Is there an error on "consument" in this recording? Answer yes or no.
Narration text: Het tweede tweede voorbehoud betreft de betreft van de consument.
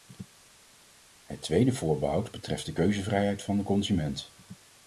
no